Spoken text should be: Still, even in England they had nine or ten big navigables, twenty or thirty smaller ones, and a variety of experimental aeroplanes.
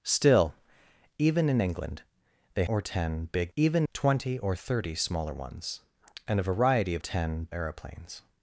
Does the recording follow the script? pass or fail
fail